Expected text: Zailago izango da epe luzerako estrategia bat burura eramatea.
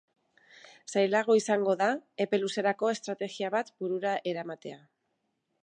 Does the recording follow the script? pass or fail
pass